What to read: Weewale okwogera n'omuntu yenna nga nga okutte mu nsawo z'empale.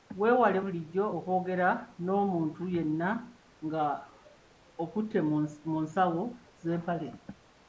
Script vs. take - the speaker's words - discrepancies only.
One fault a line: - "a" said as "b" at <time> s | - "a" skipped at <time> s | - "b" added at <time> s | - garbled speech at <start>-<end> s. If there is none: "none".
- "bulijjo" added at 0.6 s
- "nga" skipped at 3.8 s